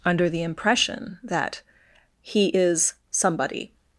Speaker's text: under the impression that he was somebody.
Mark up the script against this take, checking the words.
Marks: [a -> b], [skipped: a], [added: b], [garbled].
under the impression that he [was -> is] somebody.